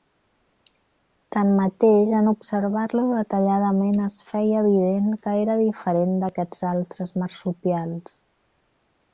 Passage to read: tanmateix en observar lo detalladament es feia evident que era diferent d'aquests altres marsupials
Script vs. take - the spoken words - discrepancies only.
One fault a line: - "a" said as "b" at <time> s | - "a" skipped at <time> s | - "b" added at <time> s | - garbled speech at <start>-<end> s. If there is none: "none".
none